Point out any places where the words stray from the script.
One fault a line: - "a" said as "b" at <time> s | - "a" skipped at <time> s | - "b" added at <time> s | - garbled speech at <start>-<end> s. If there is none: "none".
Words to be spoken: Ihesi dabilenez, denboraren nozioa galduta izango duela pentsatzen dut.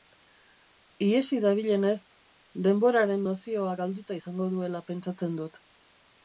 none